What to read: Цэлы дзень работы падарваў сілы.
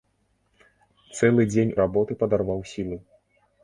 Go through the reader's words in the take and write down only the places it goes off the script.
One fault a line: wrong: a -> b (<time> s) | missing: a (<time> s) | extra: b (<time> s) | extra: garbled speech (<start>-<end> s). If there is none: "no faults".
no faults